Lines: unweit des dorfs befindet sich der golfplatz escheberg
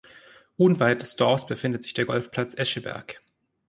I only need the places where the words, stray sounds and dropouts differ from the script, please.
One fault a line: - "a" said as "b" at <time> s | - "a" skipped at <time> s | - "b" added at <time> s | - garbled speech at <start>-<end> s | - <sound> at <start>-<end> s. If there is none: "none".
none